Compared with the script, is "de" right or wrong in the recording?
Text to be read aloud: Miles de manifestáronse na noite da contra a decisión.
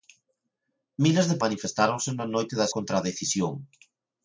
right